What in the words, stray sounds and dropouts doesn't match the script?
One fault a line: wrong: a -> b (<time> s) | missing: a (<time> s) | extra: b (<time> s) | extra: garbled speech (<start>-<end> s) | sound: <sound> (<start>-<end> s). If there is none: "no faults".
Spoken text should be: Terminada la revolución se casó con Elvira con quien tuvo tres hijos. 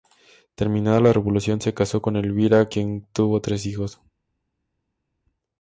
missing: con (2.7 s)